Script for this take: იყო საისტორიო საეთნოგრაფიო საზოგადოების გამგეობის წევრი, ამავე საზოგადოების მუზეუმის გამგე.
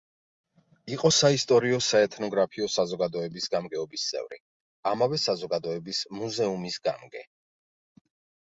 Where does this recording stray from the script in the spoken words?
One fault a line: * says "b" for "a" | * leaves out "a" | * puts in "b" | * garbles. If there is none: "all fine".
all fine